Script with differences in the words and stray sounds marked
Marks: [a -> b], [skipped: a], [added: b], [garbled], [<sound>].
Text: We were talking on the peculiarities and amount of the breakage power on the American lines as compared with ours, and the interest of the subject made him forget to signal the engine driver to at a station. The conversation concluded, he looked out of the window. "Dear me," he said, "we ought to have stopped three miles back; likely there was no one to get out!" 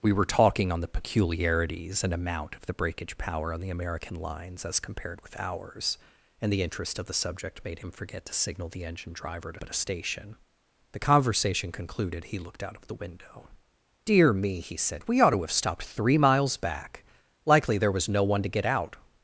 We were talking on the peculiarities and amount of the breakage power on the American lines as compared with ours, and the interest of the subject made him forget to signal the engine driver to at a station. The conversation concluded, he looked out of the window. "Dear me," he said, "we ought to have stopped three miles back; likely there was no one to get out!"